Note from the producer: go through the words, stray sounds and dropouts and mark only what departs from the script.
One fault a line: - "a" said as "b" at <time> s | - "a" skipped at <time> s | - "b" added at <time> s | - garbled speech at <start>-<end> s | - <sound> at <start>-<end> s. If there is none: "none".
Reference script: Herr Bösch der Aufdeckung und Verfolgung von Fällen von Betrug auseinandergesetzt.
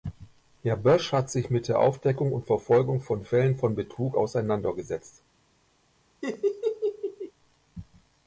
- "hat sich mit" added at 1.1 s
- laugh at 6.2-7.3 s